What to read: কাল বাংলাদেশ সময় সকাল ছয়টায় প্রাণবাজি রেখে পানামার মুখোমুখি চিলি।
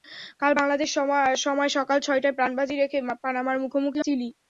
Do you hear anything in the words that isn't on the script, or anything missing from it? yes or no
no